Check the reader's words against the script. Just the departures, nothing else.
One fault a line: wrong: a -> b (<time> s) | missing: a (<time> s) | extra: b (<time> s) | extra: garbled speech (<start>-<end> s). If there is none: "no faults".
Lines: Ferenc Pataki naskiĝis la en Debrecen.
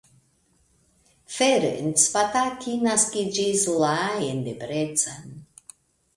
no faults